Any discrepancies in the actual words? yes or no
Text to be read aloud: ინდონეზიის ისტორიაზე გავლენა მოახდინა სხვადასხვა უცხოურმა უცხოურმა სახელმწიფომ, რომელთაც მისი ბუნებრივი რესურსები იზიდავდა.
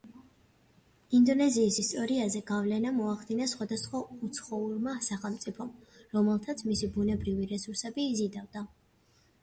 yes